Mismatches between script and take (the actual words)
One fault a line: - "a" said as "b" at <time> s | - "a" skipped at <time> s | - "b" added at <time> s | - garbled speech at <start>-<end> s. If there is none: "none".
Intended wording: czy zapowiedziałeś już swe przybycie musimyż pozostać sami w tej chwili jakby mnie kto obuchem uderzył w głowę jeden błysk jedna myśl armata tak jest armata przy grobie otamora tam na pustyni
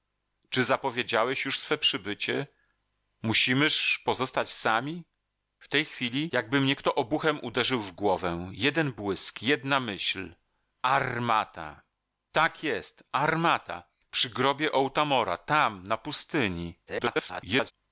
- garbled speech at 16.9-17.7 s